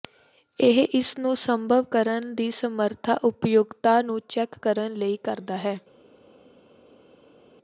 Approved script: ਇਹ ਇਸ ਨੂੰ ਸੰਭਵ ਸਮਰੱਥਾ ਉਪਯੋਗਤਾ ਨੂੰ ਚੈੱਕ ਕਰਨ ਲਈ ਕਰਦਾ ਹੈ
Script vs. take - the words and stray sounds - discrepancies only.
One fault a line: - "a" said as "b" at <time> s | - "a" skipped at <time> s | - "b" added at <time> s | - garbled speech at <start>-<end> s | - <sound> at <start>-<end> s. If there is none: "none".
- "ਕਰਨ ਦੀ" added at 1.9 s